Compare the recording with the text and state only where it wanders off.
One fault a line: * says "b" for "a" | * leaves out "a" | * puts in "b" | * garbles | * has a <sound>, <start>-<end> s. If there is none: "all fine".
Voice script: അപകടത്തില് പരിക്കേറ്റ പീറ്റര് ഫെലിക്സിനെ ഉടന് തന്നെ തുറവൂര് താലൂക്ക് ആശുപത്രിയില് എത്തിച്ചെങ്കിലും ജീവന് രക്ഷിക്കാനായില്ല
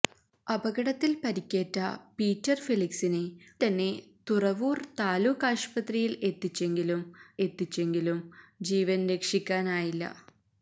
* leaves out "ഉടന്"
* puts in "എത്തിച്ചെങ്കിലും"